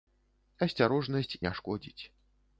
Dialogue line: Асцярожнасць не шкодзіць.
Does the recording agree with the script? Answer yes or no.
yes